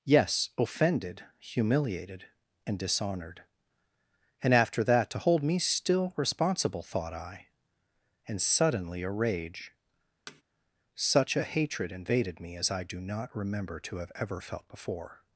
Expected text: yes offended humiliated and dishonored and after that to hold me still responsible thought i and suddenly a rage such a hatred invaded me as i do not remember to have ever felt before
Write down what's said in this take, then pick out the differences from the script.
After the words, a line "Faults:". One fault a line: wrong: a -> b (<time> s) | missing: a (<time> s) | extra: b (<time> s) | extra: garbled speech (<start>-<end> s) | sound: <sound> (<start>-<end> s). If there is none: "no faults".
yes offended humiliated and dishonored and after that to hold me still responsible thought i and suddenly a rage such a hatred invaded me as i do not remember to have ever felt before
Faults:
sound: thud (10.3-10.4 s)